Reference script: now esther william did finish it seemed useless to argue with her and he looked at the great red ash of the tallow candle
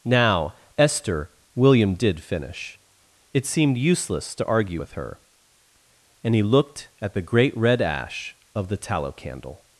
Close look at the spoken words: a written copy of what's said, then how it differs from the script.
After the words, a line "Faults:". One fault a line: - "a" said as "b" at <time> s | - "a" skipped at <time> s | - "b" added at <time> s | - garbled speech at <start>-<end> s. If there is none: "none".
now esther william did finish it seemed useless to argue with her and he looked at the great red ash of the tallow candle
Faults:
none